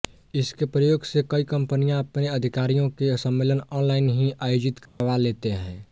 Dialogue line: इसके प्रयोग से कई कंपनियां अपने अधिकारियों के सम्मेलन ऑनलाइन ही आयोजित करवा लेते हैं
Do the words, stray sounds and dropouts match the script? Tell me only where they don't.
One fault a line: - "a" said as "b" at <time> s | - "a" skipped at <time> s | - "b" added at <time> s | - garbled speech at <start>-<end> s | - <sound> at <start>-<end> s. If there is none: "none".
- dropout at 4.9-5.0 s